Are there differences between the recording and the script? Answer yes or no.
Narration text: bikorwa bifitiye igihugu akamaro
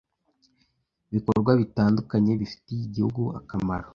yes